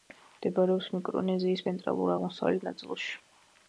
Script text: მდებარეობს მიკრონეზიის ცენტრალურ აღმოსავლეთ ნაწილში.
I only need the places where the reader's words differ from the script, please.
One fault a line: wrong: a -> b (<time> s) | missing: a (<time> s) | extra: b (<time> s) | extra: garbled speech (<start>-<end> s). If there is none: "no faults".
no faults